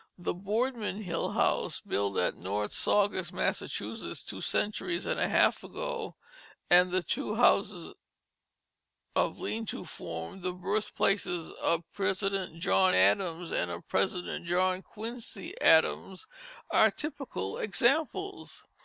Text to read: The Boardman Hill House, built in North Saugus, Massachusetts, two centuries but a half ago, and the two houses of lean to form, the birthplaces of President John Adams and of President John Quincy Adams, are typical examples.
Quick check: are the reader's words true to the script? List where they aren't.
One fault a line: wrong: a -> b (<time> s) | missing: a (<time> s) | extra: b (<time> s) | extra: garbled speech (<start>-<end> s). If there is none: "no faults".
wrong: in -> at (2.2 s)
wrong: but -> and (5.0 s)